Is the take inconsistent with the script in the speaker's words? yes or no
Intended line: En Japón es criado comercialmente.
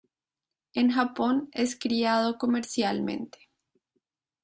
no